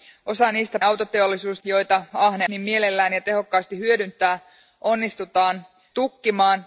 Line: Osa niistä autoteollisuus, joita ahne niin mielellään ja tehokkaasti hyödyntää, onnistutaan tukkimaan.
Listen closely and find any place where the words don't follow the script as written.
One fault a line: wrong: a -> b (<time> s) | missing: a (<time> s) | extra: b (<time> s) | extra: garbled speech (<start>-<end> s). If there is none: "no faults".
no faults